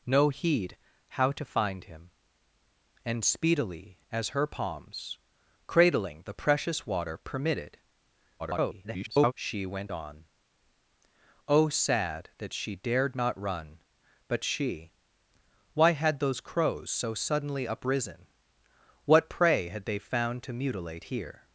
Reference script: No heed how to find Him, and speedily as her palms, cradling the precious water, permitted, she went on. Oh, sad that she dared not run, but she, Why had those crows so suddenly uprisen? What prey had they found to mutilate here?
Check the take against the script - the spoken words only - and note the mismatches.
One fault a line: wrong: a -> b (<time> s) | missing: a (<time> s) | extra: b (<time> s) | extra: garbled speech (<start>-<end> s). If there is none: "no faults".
extra: garbled speech (8.4-9.3 s)